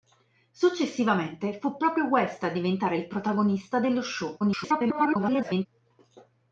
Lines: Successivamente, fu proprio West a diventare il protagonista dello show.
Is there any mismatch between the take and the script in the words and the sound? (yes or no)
yes